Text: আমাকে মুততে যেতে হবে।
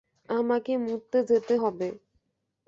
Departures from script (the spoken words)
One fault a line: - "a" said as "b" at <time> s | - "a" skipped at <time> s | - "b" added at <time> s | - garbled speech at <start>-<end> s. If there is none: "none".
none